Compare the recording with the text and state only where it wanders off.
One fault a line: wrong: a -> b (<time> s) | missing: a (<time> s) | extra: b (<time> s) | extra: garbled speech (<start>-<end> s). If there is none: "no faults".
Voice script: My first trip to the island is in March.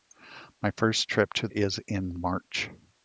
missing: the island (1.5 s)